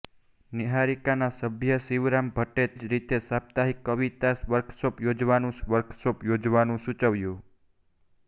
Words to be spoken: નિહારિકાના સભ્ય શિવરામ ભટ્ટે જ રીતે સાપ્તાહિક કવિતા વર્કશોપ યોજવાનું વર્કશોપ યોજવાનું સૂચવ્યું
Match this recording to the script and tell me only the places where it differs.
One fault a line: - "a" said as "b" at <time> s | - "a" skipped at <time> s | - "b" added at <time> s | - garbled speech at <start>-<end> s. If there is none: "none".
none